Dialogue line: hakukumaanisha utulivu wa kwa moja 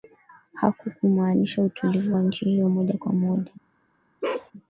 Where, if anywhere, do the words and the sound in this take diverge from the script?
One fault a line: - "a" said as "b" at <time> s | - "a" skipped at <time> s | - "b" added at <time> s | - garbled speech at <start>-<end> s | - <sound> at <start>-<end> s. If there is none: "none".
- "nchi hiyo moja" added at 2.2 s
- bark at 4.2-4.5 s